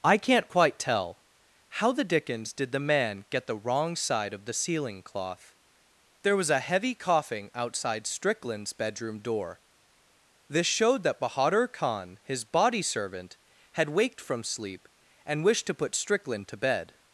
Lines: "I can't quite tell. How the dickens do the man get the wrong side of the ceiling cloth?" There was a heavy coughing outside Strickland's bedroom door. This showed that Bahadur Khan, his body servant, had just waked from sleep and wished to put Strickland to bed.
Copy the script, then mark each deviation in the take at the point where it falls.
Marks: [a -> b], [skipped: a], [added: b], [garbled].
"I can't quite tell. How the dickens [do -> did] the man get the wrong side of the ceiling cloth?" There was a heavy coughing outside Strickland's bedroom door. This showed that Bahadur Khan, his body servant, had [skipped: just] waked from sleep and wished to put Strickland to bed.